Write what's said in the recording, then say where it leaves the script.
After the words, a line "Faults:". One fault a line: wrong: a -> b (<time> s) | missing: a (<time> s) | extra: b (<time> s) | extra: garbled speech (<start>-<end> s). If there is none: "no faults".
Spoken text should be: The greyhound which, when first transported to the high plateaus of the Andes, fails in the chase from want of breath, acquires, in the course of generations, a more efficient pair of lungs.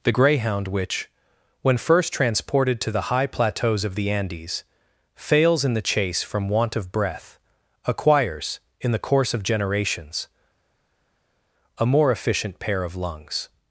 The greyhound which, when first transported to the high plateaus of the Andes, fails in the chase from want of breath, acquires, in the course of generations, a more efficient pair of lungs.
Faults:
no faults